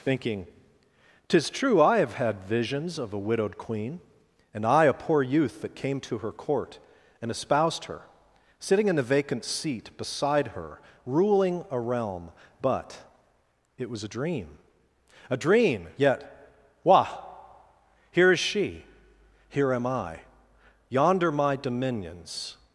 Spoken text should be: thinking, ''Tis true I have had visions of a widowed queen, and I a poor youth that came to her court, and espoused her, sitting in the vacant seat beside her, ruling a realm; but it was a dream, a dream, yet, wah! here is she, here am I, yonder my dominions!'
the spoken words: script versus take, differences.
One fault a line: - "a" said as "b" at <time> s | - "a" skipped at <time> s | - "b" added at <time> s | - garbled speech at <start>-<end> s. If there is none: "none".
none